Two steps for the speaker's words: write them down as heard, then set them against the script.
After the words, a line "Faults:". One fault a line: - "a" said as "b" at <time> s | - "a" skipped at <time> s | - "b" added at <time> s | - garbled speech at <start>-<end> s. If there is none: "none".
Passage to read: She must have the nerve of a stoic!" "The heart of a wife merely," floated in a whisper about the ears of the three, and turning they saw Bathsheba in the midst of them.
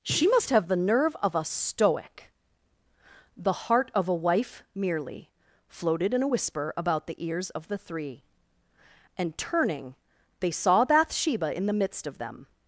She must have the nerve of a stoic!" "The heart of a wife merely," floated in a whisper about the ears of the three, and turning they saw Bathsheba in the midst of them.
Faults:
none